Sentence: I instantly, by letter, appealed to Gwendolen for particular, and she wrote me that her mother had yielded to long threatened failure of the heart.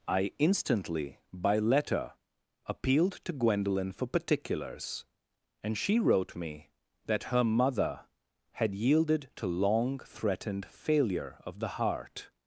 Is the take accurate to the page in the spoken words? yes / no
no